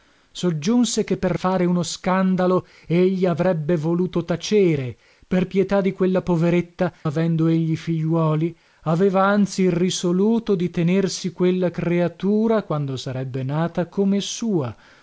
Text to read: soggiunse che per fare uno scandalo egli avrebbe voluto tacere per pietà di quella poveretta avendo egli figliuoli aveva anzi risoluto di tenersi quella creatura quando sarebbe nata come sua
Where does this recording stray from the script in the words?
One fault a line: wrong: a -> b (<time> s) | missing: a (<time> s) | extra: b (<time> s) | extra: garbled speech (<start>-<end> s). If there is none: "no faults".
no faults